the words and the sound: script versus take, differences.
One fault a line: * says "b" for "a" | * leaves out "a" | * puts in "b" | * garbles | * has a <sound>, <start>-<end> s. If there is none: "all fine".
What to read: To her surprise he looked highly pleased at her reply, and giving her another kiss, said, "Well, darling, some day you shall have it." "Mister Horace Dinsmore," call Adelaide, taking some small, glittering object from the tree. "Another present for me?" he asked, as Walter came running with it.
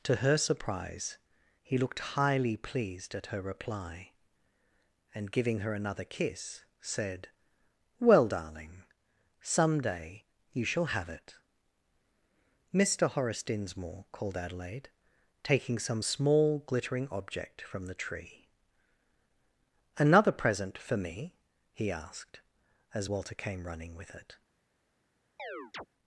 * says "called" for "call"
* has a chirp, 25.4-25.9 s